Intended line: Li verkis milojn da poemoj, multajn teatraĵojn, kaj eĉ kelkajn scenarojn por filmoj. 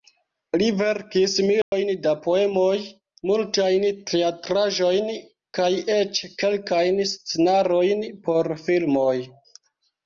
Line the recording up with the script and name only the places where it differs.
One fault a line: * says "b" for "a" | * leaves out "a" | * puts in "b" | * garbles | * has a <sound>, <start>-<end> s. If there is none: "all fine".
* has a dropout, 1.6-1.7 s